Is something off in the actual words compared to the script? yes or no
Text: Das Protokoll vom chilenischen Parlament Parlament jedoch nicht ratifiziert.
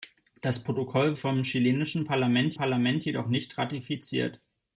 no